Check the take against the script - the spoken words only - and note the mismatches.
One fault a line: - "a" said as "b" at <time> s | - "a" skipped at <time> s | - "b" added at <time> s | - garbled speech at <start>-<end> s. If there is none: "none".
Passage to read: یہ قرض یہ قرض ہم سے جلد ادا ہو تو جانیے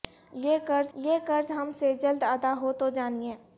none